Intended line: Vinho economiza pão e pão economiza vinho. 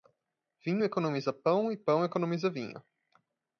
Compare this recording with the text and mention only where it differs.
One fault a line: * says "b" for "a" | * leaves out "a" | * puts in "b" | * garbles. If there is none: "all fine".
all fine